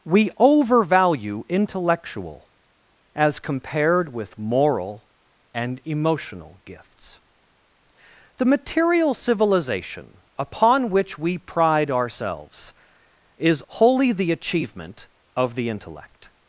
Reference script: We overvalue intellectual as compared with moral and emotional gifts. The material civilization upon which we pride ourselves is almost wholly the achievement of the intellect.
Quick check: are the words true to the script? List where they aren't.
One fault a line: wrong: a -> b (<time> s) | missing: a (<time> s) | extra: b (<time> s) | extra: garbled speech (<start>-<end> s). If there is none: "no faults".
missing: almost (13.6 s)